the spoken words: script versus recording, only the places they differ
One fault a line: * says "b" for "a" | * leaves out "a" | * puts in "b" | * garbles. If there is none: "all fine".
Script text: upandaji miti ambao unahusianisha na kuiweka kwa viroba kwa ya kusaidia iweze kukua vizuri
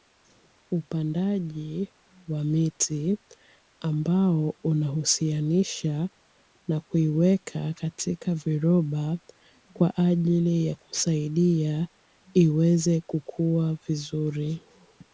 * puts in "wa"
* says "katika" for "kwa"
* puts in "ajili"